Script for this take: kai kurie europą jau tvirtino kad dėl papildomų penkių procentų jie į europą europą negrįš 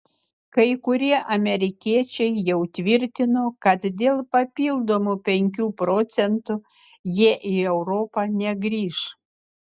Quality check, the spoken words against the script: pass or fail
fail